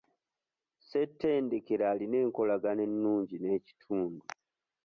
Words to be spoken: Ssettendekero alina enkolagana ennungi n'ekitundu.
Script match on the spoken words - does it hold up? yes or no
yes